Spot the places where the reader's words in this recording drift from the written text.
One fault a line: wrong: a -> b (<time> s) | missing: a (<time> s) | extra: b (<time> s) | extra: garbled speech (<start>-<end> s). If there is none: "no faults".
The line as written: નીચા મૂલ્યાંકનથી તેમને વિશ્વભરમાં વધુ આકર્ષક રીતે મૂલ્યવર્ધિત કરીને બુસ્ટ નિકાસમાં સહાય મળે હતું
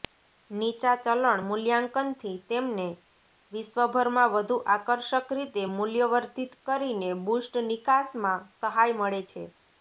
extra: ચલણ (1.0 s)
wrong: હતું -> છે (9.3 s)